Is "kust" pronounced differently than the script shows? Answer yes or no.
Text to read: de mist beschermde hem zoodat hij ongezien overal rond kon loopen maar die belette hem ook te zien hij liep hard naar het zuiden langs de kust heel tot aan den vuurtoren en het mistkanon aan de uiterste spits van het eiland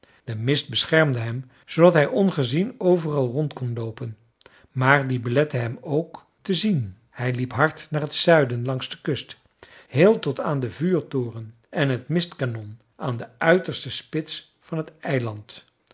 no